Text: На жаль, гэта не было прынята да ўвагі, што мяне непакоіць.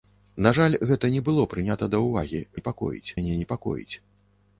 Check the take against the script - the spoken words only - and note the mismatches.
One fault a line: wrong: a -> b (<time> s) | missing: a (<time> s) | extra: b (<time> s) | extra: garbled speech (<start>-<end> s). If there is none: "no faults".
wrong: што -> непакоіць (2.6 s)